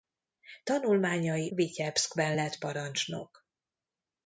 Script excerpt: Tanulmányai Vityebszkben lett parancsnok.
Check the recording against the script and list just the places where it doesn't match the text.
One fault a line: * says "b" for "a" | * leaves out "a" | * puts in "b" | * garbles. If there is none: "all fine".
all fine